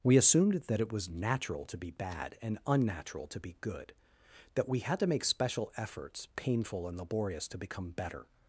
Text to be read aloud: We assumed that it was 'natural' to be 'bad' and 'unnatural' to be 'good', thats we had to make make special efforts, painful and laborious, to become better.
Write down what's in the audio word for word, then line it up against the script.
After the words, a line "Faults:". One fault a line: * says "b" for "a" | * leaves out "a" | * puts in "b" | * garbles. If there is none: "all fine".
We assumed that it was 'natural' to be 'bad' and 'unnatural' to be 'good', that we had to make special efforts, painful and laborious, to become better.
Faults:
* says "that" for "thats"
* leaves out "make"